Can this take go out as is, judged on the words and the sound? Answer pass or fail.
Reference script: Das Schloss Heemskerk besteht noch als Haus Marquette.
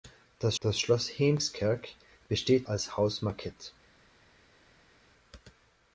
fail